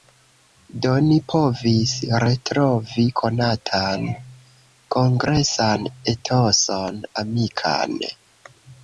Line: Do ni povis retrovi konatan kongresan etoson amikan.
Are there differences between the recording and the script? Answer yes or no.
no